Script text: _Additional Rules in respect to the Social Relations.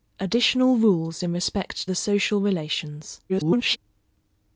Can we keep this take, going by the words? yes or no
no